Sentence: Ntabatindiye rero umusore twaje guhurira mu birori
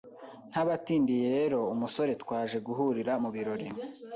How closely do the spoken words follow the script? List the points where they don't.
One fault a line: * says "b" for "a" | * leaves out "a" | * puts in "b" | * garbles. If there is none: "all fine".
all fine